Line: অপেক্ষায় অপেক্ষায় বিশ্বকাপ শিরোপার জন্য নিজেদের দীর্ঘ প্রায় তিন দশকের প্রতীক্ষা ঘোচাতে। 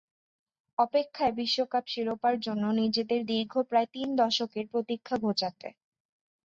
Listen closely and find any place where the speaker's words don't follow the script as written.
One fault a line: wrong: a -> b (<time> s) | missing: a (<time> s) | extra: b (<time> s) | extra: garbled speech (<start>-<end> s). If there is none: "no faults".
missing: অপেক্ষায় (1.3 s)